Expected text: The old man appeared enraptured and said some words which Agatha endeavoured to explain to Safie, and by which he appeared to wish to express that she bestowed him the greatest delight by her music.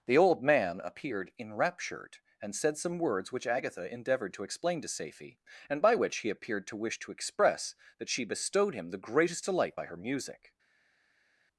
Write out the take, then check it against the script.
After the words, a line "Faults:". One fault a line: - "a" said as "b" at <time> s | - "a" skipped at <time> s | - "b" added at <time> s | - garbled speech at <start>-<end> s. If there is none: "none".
The old man appeared enraptured and said some words which Agatha endeavoured to explain to Safie, and by which he appeared to wish to express that she bestowed him the greatest delight by her music.
Faults:
none